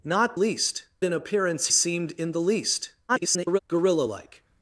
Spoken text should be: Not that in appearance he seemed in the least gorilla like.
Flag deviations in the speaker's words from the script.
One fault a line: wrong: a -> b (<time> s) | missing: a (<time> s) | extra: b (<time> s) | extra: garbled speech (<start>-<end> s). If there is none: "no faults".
wrong: that -> least (0.3 s)
missing: he (1.7 s)
extra: garbled speech (3.1-3.6 s)